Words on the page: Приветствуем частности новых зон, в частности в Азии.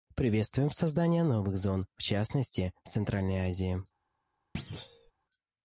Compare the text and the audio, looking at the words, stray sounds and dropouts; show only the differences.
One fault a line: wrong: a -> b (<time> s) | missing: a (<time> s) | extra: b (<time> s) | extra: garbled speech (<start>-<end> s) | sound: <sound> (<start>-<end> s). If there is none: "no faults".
wrong: частности -> создание (0.7 s)
extra: Центральной (2.9 s)
sound: thud (4.5-5.1 s)